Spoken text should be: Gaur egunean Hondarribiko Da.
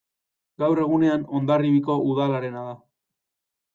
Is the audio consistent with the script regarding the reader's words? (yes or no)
no